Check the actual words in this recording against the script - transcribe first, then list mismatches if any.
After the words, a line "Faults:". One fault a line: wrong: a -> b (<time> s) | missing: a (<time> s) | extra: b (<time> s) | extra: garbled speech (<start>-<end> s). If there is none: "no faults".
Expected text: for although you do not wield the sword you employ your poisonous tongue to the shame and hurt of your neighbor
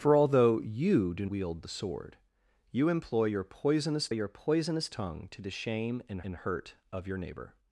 for although you do wield the sword you employ your poisonous your poisonous tongue to the shame and and hurt of your neighbor
Faults:
missing: not (1.3 s)
extra: your poisonous (4.1 s)
extra: and (6.2 s)